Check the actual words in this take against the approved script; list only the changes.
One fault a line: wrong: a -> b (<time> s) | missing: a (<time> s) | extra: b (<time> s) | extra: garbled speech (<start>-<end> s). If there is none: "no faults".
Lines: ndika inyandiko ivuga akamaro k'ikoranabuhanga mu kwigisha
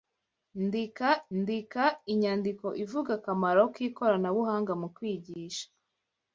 extra: ndika (1.4 s)